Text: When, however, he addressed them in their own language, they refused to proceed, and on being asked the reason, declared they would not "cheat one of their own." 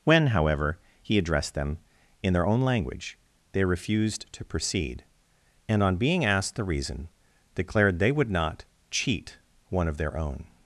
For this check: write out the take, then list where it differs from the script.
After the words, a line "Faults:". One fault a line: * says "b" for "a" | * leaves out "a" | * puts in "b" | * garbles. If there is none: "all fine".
When, however, he addressed them in their own language, they refused to proceed, and on being asked the reason, declared they would not "cheat one of their own."
Faults:
all fine